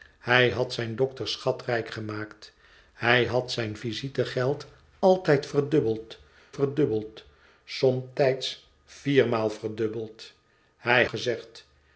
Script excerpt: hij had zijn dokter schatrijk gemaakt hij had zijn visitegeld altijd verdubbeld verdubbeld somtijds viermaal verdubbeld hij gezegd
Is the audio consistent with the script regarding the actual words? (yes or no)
yes